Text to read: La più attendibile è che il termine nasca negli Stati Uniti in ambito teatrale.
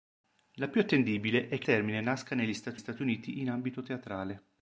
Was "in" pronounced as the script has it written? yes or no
yes